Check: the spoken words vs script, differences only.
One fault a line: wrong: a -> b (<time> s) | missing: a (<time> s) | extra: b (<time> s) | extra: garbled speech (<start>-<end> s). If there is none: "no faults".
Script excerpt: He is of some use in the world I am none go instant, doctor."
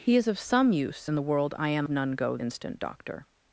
no faults